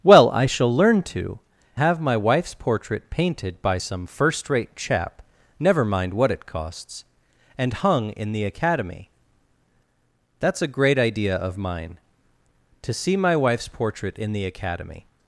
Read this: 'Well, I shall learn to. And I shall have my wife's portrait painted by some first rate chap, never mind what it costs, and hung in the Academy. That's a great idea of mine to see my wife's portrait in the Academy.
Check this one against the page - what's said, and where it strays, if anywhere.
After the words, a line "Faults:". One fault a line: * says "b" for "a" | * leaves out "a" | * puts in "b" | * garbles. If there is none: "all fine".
'Well, I shall learn to. Have my wife's portrait painted by some first rate chap, never mind what it costs, and hung in the Academy. That's a great idea of mine to see my wife's portrait in the Academy.
Faults:
* leaves out "And I shall"